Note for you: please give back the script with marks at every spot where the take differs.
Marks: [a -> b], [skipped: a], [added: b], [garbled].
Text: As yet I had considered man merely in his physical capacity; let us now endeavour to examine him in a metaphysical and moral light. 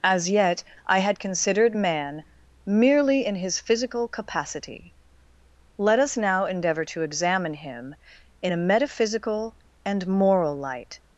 As yet I had considered man merely in his physical capacity; let us now endeavour to examine him in a metaphysical and moral light.